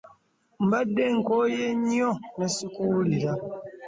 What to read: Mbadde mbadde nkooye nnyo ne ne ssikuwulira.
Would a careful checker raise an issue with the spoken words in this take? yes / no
yes